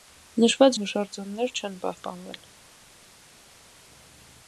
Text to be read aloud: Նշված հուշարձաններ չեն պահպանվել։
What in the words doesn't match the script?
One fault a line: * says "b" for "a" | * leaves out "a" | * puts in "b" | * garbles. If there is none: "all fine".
all fine